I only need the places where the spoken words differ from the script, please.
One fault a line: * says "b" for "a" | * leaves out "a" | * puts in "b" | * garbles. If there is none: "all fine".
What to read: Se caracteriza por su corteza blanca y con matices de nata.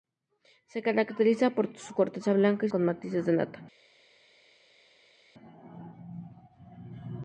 all fine